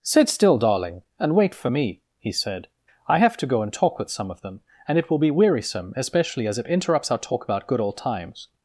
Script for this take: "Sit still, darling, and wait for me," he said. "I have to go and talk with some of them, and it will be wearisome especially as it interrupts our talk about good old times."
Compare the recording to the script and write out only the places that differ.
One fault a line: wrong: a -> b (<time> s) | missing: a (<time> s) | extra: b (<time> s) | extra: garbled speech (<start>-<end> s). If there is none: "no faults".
no faults